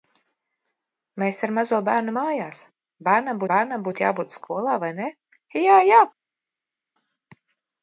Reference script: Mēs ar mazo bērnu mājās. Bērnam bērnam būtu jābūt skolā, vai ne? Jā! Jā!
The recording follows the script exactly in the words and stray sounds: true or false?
true